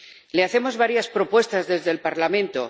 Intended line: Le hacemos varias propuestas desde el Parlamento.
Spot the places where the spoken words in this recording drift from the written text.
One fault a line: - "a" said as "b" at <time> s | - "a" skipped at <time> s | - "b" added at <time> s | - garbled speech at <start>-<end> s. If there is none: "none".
none